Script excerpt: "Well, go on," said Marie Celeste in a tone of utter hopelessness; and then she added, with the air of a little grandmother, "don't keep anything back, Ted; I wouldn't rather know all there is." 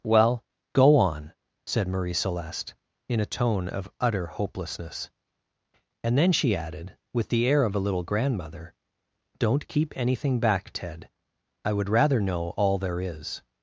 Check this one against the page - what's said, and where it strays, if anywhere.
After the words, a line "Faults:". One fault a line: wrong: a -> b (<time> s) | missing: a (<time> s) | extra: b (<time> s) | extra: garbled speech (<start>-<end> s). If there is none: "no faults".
"Well, go on," said Marie Celeste in a tone of utter hopelessness; and then she added, with the air of a little grandmother, "don't keep anything back, Ted; I would rather know all there is."
Faults:
wrong: wouldn't -> would (11.7 s)